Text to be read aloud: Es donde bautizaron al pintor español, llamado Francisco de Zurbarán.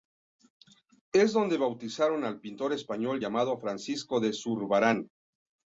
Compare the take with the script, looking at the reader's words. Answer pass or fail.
pass